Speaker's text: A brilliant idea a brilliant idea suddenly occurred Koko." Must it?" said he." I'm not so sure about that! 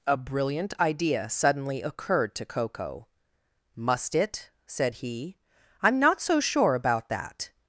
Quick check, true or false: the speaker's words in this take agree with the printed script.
false